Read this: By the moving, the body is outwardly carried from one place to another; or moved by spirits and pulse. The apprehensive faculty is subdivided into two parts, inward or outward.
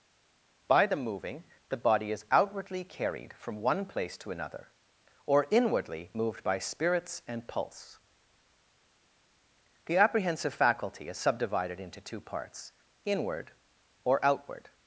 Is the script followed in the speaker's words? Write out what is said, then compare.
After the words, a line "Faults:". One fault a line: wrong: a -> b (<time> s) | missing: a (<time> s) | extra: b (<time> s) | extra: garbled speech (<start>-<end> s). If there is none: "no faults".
By the moving, the body is outwardly carried from one place to another; or inwardly moved by spirits and pulse. The apprehensive faculty is subdivided into two parts, inward or outward.
Faults:
extra: inwardly (5.5 s)